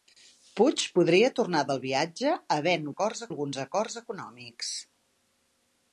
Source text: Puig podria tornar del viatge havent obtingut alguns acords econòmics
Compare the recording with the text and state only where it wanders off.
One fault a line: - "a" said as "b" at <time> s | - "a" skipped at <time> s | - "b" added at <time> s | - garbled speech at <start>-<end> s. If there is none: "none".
- "obtingut" said as "acords" at 2.9 s